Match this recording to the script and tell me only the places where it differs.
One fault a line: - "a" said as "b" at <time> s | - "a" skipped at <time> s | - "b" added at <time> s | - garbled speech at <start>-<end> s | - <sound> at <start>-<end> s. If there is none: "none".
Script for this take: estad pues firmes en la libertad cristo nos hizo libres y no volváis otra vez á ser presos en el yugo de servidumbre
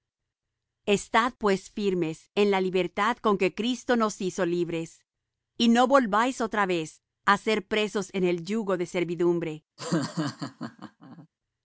- "con que" added at 3.2 s
- laugh at 9.8-11.3 s